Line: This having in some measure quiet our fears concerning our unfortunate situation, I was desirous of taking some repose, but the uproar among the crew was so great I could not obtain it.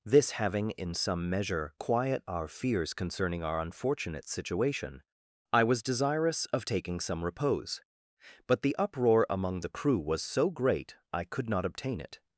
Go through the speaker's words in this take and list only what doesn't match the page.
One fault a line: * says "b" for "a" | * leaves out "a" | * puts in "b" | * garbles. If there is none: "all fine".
all fine